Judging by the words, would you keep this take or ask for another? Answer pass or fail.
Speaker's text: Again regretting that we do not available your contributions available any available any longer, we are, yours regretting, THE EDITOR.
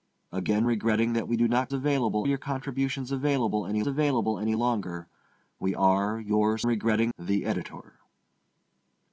pass